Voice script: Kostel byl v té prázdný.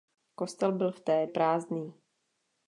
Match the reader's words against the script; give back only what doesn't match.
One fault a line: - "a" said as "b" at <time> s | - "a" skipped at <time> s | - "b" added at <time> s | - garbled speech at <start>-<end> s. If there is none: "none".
none